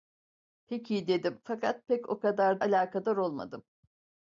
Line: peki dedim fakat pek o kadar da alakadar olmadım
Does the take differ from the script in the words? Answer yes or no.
yes